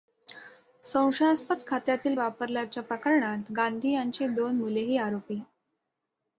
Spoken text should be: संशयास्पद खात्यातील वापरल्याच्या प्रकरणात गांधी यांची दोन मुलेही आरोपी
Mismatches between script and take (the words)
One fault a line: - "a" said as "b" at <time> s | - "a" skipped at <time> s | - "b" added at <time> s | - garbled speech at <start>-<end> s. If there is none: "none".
none